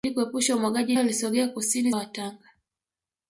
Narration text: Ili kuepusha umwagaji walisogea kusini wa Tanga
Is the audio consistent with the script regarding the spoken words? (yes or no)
yes